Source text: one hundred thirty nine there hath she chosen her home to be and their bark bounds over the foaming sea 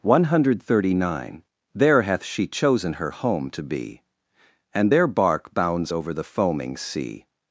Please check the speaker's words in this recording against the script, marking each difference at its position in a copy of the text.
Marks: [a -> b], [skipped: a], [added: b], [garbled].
one hundred thirty nine there hath she chosen her home to be and their bark bounds over the foaming sea